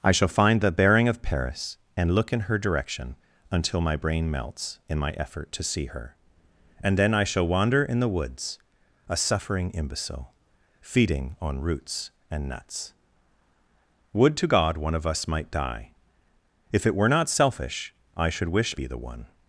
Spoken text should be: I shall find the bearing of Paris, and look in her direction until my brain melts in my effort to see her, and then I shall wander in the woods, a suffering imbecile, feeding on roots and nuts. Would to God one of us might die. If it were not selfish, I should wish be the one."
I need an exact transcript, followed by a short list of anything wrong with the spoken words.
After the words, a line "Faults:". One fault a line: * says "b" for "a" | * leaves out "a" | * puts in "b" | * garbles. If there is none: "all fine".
I shall find the bearing of Paris, and look in her direction until my brain melts in my effort to see her, and then I shall wander in the woods, a suffering imbecile, feeding on roots and nuts. Would to God one of us might die. If it were not selfish, I should wish be the one."
Faults:
all fine